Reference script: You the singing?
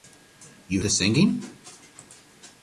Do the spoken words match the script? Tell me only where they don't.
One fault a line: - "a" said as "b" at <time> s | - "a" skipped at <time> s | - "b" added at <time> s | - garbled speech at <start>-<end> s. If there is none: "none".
none